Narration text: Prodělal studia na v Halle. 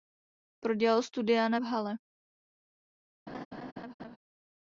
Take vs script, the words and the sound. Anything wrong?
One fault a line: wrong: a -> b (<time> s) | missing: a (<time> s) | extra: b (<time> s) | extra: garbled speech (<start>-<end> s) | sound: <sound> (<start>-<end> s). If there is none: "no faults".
sound: laugh (3.3-4.2 s)